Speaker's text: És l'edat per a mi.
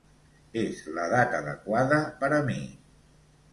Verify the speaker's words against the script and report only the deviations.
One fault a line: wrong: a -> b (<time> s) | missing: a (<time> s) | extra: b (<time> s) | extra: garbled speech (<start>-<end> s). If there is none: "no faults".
extra: adequada (1.4 s)